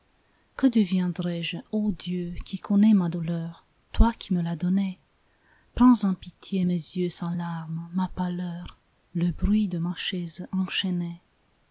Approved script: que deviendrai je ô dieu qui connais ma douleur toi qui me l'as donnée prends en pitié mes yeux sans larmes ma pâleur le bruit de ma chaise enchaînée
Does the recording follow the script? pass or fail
pass